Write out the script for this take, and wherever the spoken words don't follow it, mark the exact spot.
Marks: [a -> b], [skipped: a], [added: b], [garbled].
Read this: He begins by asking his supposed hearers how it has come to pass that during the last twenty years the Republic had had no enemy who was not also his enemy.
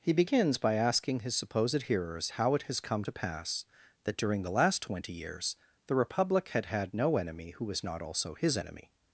He begins by asking his supposed hearers how it has come to pass that during the last twenty years the Republic had had no enemy who was not also his enemy.